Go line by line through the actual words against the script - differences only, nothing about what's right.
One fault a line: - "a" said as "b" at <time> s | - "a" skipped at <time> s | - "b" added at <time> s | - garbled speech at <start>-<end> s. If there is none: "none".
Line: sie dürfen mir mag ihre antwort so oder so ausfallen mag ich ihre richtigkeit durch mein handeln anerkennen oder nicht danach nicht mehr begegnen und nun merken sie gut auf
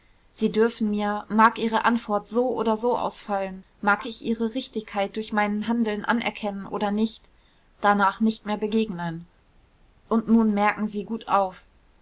none